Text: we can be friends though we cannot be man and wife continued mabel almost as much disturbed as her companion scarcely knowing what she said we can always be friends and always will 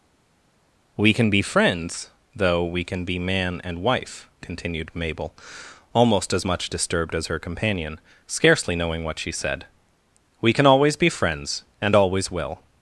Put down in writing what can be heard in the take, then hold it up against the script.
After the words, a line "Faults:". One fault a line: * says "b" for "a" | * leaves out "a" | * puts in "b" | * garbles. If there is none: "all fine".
we can be friends though we can be man and wife continued mabel almost as much disturbed as her companion scarcely knowing what she said we can always be friends and always will
Faults:
* says "can" for "cannot"